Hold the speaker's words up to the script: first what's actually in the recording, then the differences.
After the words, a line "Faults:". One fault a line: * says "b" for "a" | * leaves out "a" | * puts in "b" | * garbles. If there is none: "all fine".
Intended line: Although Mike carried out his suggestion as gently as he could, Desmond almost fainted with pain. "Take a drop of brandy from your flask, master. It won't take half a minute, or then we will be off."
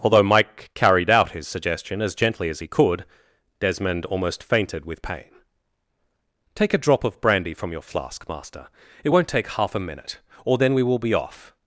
Although Mike carried out his suggestion as gently as he could, Desmond almost fainted with pain. "Take a drop of brandy from your flask, master. It won't take half a minute, or then we will be off."
Faults:
all fine